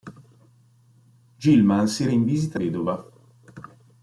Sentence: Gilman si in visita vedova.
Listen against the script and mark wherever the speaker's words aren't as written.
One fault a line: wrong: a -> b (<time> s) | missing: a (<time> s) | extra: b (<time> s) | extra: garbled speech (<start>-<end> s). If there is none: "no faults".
no faults